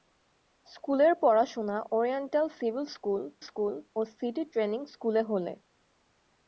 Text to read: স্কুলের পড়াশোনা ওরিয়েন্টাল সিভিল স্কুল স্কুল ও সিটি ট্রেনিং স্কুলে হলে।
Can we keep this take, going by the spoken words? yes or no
yes